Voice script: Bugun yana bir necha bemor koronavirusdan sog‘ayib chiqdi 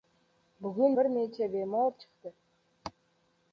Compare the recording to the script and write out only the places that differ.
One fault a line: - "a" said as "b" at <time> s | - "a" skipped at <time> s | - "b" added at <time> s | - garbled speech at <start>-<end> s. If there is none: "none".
- "yana" skipped at 0.9 s
- "koronavirusdan sog‘ayib" skipped at 2.0 s